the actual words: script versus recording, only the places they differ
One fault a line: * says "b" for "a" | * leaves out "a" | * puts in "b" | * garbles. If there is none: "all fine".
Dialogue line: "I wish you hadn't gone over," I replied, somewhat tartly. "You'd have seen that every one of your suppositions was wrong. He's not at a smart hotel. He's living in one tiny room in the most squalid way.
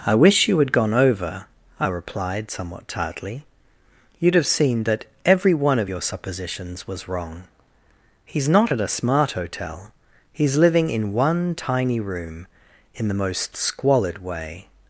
* says "had" for "hadn't"